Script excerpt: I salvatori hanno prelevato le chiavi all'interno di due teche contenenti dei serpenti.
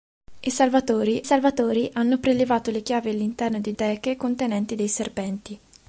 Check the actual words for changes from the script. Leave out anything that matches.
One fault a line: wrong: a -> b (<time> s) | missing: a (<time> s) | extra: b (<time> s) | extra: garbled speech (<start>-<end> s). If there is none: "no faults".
extra: salvatori (1.2 s)
missing: due (3.7 s)